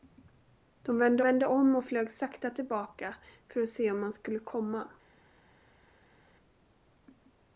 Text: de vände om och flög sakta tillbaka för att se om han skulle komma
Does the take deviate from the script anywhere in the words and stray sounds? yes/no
yes